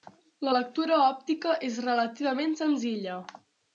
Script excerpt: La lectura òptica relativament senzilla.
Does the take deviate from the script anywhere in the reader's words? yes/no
yes